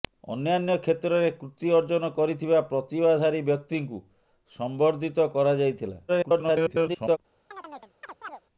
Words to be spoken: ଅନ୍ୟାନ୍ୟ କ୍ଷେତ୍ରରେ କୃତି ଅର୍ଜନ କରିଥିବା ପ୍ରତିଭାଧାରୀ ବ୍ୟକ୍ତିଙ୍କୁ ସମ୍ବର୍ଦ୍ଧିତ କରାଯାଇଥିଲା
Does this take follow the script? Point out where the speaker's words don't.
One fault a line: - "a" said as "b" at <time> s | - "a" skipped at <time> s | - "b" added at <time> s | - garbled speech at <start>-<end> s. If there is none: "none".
- garbled speech at 6.1-7.2 s